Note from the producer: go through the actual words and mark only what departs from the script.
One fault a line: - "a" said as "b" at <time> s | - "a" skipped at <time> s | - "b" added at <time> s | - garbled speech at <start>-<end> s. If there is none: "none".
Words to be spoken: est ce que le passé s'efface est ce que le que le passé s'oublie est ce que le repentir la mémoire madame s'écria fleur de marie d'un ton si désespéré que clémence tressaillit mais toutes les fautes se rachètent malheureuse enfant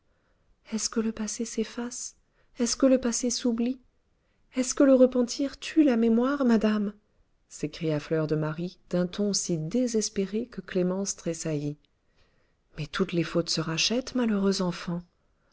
- "que le" skipped at 3.0 s
- "tue" added at 5.6 s